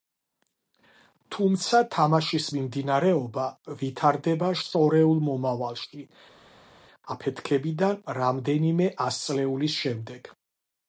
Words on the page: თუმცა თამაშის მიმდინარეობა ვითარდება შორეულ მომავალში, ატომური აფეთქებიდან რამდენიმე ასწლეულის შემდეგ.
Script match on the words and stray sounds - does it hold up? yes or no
no